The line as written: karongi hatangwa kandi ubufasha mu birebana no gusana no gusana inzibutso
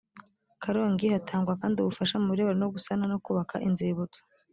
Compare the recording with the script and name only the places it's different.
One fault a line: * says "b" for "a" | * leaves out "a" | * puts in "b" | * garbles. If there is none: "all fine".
* says "kubaka" for "gusana"